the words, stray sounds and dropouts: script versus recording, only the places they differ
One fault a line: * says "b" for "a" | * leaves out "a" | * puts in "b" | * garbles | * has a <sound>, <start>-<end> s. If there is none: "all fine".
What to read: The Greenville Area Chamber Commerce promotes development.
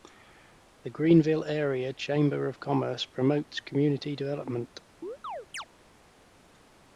* puts in "of"
* puts in "community"
* has a chirp, 5.0-5.7 s